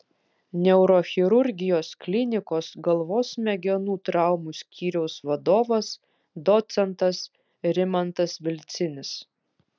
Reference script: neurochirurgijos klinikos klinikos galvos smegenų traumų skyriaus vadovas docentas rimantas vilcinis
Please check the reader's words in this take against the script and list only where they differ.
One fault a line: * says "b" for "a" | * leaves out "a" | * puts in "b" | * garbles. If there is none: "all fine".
* leaves out "klinikos"